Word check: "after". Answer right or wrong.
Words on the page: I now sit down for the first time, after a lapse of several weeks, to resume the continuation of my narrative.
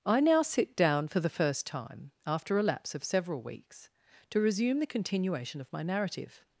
right